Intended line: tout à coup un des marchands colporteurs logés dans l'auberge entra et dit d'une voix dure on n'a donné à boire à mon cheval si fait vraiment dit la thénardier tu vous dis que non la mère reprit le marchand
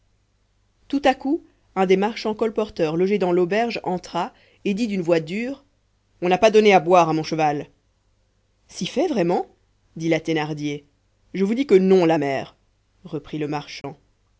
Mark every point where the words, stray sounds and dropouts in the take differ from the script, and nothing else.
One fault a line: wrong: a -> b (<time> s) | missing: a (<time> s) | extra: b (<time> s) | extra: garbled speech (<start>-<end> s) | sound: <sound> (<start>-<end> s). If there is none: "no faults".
extra: pas (6.4 s)
wrong: tu -> je (11.3 s)
sound: dropout (13.8-13.8 s)